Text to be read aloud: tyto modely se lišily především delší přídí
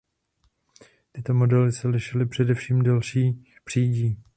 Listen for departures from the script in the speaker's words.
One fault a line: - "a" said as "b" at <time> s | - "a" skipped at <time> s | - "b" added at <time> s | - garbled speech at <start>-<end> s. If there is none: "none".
none